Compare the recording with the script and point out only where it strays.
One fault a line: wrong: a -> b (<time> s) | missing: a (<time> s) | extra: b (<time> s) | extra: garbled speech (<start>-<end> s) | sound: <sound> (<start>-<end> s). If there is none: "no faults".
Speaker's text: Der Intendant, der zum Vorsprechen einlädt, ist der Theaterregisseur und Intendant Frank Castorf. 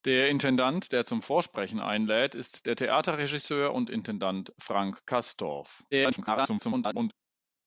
extra: garbled speech (5.9-7.1 s)